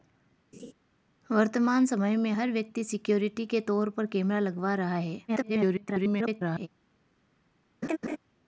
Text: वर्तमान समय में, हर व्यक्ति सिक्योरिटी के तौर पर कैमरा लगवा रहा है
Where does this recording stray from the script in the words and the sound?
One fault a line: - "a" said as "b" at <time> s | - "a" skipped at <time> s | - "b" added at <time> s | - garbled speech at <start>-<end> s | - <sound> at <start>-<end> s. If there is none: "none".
- laugh at 0.5-0.7 s
- garbled speech at 5.3-6.7 s
- laugh at 7.8-8.2 s